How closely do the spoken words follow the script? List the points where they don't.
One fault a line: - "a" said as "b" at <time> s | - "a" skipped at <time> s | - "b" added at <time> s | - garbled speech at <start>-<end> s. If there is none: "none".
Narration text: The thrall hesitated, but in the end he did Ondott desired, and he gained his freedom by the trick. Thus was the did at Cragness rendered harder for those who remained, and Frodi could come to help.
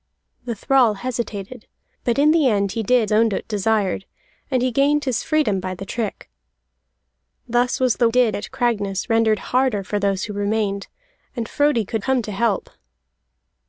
none